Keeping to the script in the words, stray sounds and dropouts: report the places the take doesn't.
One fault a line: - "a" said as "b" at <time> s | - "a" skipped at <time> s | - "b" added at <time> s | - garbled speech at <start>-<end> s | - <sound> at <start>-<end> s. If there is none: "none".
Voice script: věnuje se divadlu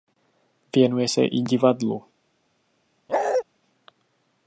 - "i" added at 1.3 s
- bark at 3.1-3.4 s